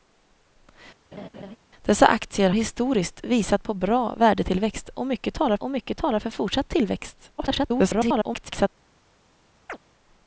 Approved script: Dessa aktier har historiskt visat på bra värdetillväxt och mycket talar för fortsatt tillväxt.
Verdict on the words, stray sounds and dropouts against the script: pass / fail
fail